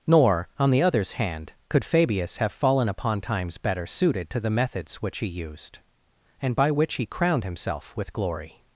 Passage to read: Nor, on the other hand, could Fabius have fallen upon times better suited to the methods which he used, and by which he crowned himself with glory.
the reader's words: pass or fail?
fail